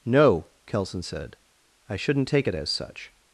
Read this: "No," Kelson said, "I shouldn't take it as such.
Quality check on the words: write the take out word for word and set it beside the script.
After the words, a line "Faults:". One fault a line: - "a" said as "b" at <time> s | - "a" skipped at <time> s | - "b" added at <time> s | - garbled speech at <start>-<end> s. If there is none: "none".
"No," Kelson said, "I shouldn't take it as such.
Faults:
none